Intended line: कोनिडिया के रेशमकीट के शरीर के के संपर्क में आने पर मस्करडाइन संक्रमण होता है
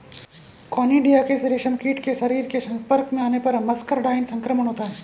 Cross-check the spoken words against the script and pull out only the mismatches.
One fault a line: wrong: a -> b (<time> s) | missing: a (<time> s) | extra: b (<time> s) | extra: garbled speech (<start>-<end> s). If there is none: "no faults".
missing: के (2.6 s)